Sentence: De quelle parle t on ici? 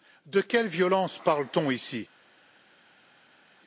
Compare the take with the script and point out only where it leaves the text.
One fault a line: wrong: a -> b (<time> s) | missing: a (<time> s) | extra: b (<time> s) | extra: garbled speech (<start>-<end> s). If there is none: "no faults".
extra: violence (0.7 s)